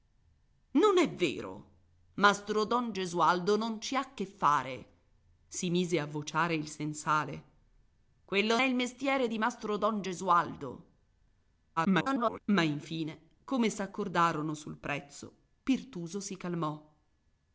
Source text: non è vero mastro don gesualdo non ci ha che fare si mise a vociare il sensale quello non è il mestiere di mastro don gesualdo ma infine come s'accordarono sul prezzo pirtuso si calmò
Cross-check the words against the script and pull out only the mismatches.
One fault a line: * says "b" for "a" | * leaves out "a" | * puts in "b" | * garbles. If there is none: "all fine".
* leaves out "non"
* garbles